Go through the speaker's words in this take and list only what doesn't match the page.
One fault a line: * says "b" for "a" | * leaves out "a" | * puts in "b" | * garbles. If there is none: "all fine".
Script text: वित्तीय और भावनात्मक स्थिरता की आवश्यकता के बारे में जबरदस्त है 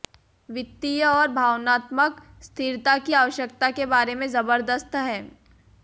all fine